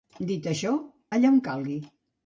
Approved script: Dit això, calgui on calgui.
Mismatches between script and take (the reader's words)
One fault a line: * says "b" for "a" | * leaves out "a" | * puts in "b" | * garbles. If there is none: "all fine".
* says "allà" for "calgui"